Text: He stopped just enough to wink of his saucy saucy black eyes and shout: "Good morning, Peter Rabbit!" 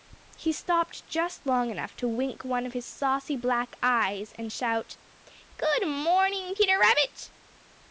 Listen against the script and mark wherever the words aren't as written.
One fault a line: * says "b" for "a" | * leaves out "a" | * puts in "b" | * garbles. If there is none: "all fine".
* puts in "long"
* puts in "one"
* leaves out "saucy"